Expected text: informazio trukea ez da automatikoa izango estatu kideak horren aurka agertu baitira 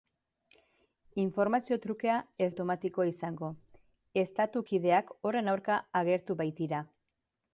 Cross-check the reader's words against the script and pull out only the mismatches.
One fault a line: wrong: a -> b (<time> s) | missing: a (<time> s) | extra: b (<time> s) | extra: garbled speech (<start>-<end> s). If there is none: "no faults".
missing: da (2.5 s)